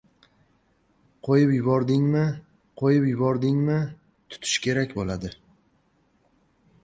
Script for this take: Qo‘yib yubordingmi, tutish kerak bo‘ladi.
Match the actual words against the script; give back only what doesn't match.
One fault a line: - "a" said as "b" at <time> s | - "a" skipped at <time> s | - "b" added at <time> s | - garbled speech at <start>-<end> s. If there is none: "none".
- "qo‘yib yubordingmi" added at 2.8 s